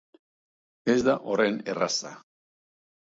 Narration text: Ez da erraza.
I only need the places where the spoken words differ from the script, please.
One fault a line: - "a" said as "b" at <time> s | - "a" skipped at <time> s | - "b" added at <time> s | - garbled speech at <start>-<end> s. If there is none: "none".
- "horren" added at 1.3 s